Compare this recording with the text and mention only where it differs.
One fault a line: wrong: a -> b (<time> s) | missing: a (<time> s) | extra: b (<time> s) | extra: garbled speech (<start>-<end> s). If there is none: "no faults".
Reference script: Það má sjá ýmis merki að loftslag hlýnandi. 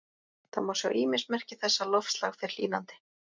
extra: þess (1.6 s)
extra: fer (2.4 s)